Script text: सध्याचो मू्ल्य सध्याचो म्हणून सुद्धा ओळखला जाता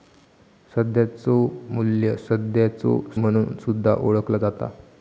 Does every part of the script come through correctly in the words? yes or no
yes